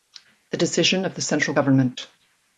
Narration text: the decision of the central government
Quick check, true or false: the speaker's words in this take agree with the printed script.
true